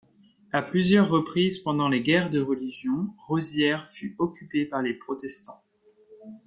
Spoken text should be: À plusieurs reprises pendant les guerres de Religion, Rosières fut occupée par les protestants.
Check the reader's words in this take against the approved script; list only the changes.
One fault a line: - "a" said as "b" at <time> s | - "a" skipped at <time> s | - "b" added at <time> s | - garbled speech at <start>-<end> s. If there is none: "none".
none